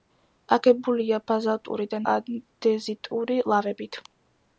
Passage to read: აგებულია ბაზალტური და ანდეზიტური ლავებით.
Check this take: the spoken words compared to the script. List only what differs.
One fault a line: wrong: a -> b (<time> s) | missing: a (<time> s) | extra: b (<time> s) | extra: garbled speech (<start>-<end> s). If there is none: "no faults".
no faults